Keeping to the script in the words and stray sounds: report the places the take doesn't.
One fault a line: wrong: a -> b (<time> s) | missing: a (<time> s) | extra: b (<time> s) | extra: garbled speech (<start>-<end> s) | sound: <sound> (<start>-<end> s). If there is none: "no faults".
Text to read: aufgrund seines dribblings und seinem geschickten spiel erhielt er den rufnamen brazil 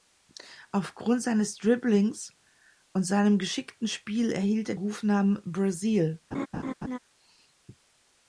missing: den (4.8 s)
sound: laugh (6.3-7.0 s)